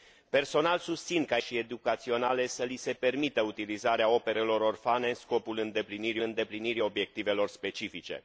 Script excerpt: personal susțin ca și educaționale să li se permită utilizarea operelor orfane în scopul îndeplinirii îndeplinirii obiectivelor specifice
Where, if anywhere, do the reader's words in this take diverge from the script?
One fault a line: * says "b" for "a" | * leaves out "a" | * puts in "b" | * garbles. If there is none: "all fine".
all fine